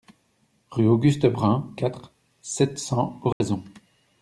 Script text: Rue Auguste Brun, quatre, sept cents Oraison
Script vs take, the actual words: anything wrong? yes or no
no